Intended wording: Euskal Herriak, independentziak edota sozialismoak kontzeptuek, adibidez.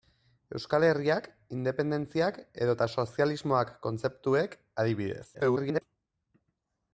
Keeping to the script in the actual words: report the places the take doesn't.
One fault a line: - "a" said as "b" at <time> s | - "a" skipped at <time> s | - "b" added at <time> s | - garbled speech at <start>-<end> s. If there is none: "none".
- garbled speech at 5.3-5.8 s